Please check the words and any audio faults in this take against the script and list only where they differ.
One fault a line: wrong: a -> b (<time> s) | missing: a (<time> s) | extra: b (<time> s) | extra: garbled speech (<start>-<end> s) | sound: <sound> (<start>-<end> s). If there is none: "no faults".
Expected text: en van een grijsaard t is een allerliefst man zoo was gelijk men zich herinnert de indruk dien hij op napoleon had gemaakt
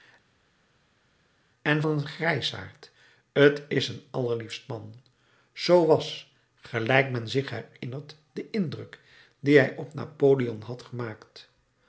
missing: van (1.8 s)